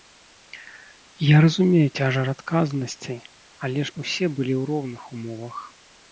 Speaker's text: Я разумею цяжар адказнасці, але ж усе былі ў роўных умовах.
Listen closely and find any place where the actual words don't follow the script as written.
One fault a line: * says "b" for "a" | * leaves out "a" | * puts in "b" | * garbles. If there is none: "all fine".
all fine